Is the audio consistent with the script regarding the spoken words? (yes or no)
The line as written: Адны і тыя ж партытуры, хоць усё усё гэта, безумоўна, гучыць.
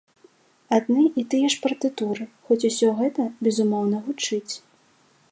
no